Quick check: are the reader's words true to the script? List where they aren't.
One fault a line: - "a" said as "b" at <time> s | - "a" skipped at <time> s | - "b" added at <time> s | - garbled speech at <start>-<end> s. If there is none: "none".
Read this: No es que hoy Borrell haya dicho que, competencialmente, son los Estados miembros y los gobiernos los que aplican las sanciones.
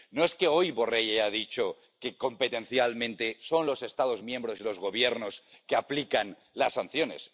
none